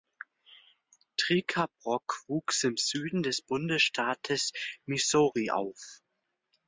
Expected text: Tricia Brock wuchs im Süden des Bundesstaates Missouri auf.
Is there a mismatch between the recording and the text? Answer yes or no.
no